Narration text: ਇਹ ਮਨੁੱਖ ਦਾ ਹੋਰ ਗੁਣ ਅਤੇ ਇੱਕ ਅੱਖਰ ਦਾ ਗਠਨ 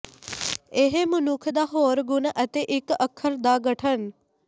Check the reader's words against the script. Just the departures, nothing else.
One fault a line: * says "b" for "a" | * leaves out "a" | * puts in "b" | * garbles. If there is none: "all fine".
all fine